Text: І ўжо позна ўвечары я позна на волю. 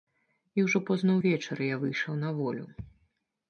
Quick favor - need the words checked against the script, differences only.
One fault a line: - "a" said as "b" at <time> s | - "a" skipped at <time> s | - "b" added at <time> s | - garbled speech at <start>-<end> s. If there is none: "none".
- "позна" said as "выйшаў" at 1.8 s